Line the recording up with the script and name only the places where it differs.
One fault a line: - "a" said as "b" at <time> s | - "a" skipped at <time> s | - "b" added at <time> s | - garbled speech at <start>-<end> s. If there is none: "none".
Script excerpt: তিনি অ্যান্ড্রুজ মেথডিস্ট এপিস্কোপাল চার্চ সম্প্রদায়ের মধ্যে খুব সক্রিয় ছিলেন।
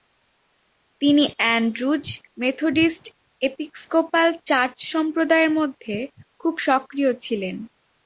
none